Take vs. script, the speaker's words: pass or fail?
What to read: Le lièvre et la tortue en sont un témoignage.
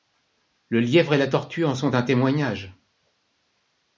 pass